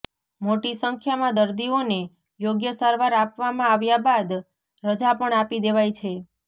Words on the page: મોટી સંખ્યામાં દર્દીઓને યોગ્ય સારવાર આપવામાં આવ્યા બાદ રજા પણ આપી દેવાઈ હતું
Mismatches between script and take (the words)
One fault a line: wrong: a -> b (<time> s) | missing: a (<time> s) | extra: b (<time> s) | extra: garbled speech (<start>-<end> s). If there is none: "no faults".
wrong: હતું -> છે (6.0 s)